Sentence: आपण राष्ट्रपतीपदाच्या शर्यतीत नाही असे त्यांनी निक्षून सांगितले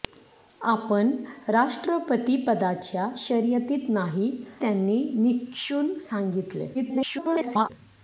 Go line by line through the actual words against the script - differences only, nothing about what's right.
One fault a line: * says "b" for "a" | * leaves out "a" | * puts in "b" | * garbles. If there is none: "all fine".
* leaves out "असे"
* garbles